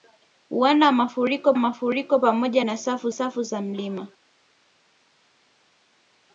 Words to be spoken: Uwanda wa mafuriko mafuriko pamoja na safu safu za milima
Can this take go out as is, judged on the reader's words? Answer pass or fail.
pass